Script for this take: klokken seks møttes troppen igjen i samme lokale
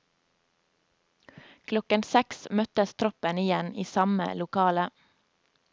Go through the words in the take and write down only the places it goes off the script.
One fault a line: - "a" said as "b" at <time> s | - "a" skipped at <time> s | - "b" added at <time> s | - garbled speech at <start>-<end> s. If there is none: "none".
none